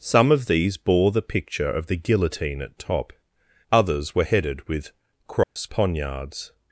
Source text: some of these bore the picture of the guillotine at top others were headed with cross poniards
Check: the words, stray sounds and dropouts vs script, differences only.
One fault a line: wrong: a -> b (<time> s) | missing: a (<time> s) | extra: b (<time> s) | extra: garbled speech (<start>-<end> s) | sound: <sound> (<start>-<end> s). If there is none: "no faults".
sound: dropout (5.4-5.6 s)